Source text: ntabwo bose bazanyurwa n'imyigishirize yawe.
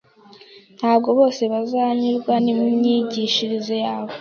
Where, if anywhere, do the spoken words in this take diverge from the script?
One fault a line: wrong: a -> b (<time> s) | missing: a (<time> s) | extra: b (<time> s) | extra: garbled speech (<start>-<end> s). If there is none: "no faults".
no faults